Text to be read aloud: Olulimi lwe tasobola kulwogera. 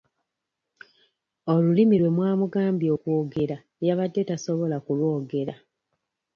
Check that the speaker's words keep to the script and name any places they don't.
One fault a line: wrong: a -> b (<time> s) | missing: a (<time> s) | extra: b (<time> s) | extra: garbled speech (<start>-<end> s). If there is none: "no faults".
extra: mwamugambye okwogera yabadde (2.1 s)